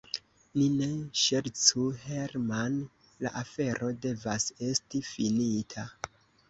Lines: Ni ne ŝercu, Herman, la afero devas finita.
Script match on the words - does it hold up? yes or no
no